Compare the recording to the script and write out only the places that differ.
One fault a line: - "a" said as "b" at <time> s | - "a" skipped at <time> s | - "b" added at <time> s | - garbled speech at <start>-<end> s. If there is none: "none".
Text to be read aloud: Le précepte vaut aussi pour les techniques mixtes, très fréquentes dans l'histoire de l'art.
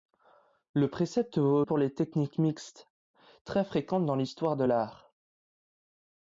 - "aussi" skipped at 1.6 s